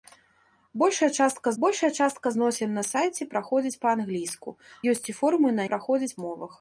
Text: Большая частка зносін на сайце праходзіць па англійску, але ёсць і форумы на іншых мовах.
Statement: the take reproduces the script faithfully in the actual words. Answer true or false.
false